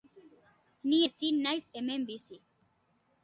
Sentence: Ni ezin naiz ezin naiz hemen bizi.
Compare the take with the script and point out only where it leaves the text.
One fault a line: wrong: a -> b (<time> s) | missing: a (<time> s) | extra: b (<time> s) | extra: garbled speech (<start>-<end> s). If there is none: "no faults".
missing: ezin naiz (1.7 s)